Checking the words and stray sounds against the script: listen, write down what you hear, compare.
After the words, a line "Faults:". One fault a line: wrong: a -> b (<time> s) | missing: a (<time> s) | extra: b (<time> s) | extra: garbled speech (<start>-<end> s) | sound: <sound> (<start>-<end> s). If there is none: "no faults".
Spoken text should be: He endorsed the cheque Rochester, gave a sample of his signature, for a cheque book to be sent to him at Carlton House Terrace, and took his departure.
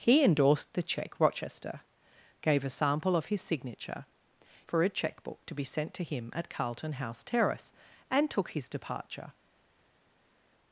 He endorsed the cheque Rochester, gave a sample of his signature, for a cheque book to be sent to him at Carlton House Terrace, and took his departure.
Faults:
no faults